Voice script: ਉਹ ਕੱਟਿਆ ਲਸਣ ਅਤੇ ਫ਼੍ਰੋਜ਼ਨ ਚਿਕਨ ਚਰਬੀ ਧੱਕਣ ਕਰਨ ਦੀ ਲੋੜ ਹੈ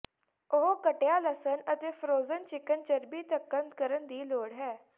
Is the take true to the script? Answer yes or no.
yes